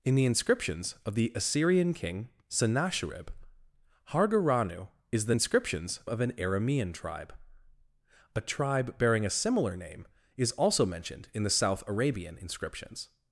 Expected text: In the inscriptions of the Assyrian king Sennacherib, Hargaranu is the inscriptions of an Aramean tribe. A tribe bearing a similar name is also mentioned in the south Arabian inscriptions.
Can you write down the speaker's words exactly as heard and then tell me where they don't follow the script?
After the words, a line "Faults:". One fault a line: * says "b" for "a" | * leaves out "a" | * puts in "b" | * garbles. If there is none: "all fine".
In the inscriptions of the Assyrian king Sennacherib, Hargaranu is the inscriptions of an Aramean tribe. A tribe bearing a similar name is also mentioned in the south Arabian inscriptions.
Faults:
all fine